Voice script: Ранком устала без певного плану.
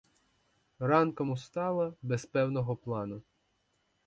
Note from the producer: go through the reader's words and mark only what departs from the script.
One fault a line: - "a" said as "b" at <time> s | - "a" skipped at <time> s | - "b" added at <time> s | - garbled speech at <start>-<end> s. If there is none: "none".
none